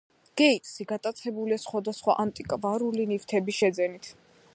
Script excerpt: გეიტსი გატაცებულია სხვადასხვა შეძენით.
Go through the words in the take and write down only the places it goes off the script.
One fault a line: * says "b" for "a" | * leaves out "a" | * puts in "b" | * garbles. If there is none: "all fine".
* puts in "ანტიკვარული ნივთების"